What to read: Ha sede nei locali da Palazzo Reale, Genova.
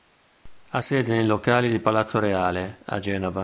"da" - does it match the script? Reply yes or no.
no